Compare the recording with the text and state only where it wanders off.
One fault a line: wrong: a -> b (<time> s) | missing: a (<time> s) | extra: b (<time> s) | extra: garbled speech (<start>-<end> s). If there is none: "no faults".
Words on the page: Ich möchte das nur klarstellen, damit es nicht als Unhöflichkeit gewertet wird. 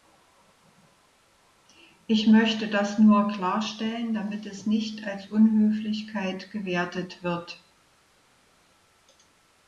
no faults